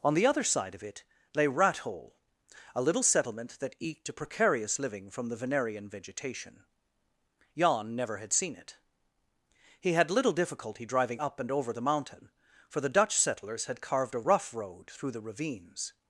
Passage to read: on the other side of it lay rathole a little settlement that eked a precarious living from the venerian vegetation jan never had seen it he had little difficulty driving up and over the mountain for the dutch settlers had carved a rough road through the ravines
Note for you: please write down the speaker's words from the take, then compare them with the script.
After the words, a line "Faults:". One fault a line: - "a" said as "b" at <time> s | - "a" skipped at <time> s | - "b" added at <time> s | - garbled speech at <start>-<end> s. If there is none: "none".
on the other side of it lay rathole a little settlement that eked a precarious living from the venerian vegetation jan never had seen it he had little difficulty driving up and over the mountain for the dutch settlers had carved a rough road through the ravines
Faults:
none